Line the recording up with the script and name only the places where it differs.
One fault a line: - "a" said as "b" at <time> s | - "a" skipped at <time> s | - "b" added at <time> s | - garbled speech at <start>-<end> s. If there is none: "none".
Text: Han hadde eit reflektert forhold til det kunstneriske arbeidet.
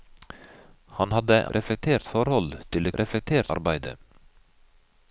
- "eit" skipped at 1.4 s
- "kunstneriske" said as "reflektert" at 3.0 s